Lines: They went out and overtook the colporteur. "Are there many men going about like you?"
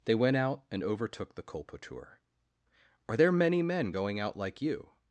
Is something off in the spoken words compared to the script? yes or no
yes